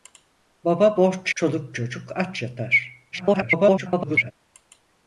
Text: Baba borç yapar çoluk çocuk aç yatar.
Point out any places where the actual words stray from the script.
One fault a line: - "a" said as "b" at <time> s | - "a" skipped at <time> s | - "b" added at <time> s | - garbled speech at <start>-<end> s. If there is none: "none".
- "yapar" skipped at 1.4 s
- garbled speech at 3.1-4.3 s